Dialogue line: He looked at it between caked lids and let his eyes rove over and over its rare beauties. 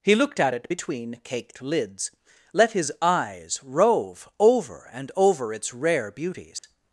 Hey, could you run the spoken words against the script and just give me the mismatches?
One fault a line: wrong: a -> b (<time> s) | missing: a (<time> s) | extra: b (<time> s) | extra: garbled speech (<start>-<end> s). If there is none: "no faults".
missing: and (2.1 s)